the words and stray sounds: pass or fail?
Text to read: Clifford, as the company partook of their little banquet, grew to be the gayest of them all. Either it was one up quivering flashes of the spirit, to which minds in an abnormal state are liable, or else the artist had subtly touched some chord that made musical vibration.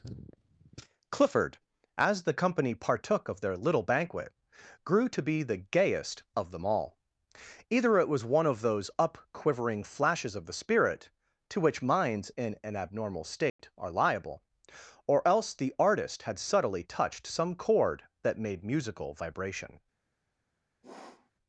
fail